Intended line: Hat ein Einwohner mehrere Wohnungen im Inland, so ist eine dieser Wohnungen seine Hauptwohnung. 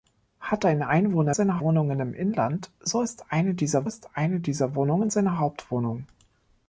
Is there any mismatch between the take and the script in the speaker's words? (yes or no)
yes